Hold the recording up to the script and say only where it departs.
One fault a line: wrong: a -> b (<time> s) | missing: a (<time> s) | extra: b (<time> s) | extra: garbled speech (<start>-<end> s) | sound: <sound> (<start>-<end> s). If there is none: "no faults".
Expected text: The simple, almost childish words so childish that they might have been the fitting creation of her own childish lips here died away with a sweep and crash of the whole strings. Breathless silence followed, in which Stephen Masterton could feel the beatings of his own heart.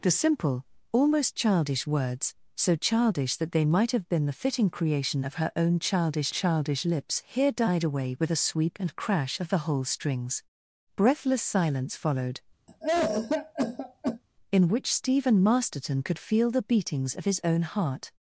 extra: childish (6.3 s)
sound: cough (12.7-14.2 s)